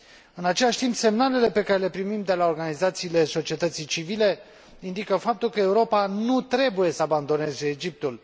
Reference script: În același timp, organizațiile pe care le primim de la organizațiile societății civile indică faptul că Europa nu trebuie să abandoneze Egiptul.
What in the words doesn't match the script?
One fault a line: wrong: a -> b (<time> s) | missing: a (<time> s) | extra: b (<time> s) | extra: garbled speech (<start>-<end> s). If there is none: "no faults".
wrong: organizațiile -> semnalele (0.9 s)